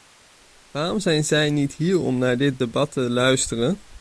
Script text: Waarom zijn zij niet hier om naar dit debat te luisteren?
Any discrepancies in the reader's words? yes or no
no